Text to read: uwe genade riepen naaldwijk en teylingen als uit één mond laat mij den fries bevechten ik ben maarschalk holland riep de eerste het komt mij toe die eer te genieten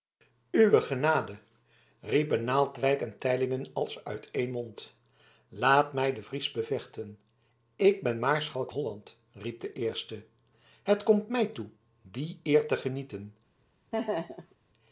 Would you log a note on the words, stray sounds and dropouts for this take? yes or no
yes